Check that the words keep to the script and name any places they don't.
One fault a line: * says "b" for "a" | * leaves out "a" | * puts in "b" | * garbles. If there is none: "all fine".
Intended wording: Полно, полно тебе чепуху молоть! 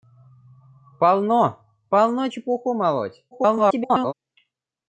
* leaves out "тебе"
* garbles